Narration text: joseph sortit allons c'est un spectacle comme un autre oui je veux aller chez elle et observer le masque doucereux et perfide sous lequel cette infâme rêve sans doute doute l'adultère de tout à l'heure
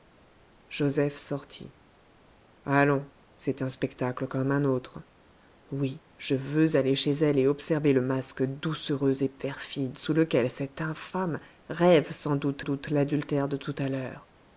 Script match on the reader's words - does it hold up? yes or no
yes